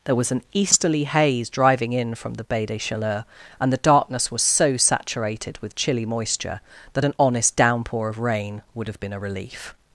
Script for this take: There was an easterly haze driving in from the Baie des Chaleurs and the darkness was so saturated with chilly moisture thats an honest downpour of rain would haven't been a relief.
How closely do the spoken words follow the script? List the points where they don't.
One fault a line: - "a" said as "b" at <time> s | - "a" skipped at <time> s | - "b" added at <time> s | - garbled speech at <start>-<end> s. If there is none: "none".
- "thats" said as "that" at 6.9 s
- "haven't" said as "have" at 8.9 s